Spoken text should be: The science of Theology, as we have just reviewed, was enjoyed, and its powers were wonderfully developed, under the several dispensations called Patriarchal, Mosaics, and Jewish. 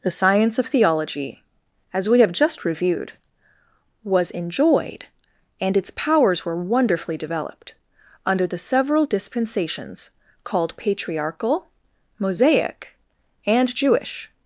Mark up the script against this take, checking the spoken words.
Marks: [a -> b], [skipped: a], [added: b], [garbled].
The science of Theology, as we have just reviewed, was enjoyed, and its powers were wonderfully developed, under the several dispensations called Patriarchal, [Mosaics, -> Mosaic] and Jewish.